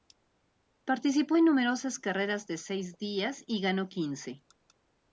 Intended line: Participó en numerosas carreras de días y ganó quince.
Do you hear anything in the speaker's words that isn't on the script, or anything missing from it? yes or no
yes